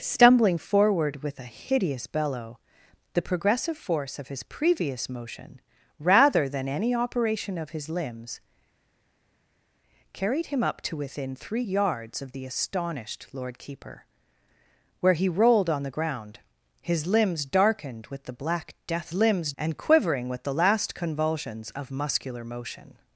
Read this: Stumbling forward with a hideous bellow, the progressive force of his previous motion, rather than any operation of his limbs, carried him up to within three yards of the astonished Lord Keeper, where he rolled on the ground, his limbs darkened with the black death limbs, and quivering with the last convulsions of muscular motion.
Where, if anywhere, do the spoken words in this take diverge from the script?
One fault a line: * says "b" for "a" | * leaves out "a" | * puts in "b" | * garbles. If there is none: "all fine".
all fine